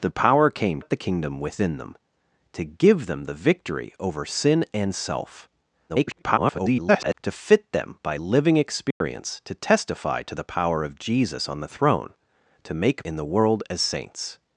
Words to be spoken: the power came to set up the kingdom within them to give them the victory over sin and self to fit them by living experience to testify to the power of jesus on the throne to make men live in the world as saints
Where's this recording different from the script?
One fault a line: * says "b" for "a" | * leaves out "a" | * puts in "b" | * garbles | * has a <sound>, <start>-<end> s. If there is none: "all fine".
* leaves out "to set"
* garbles
* has a dropout, 8.9-9.0 s
* leaves out "men live"